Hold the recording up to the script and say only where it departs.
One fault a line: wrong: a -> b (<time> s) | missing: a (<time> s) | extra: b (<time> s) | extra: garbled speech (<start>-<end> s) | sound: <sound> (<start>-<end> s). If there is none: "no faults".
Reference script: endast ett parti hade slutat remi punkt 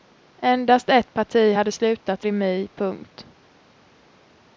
no faults